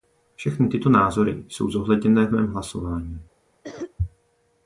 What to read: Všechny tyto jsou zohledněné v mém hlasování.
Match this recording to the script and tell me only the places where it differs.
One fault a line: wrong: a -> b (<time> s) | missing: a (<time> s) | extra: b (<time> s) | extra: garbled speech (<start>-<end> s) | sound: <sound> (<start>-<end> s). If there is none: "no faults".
extra: názory (0.9 s)
sound: cough (3.6-3.9 s)